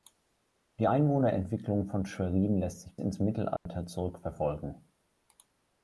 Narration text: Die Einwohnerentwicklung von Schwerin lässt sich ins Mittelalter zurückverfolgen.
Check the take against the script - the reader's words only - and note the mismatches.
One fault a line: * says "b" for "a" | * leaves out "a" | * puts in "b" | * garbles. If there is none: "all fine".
all fine